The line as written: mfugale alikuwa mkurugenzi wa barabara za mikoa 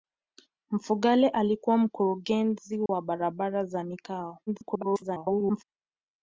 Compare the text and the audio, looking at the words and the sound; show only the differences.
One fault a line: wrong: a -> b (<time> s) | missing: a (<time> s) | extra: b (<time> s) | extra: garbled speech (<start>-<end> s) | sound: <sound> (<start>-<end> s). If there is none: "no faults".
sound: dropout (2.9-2.9 s)
extra: garbled speech (4.5-5.6 s)